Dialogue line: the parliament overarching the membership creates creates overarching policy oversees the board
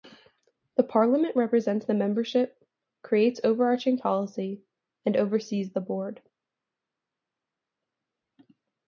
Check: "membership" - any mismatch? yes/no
no